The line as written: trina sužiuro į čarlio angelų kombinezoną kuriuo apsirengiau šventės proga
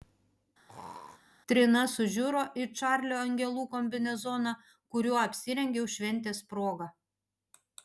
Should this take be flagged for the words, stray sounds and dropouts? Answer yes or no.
yes